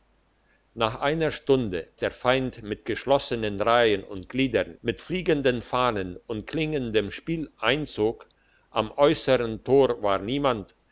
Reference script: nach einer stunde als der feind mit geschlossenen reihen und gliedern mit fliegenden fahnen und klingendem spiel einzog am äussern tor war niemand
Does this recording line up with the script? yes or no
no